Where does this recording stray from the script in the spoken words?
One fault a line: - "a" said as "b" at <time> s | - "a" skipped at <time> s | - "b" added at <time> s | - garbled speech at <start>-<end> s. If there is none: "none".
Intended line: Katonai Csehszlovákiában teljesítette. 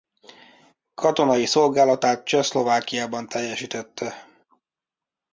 - "szolgálatát" added at 1.4 s